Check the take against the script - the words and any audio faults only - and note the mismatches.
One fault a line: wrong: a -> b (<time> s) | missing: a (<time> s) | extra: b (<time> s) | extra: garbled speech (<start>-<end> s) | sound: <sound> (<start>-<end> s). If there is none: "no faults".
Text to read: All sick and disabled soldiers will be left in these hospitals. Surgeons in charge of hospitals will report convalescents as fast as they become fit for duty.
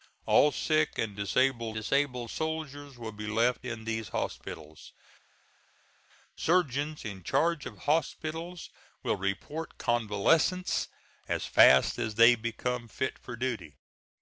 extra: disabled (1.7 s)